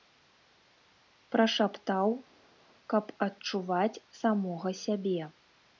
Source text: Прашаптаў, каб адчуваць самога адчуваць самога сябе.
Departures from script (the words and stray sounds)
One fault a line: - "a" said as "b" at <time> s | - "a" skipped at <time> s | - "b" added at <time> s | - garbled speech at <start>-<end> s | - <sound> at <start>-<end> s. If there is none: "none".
- "адчуваць самога" skipped at 4.7 s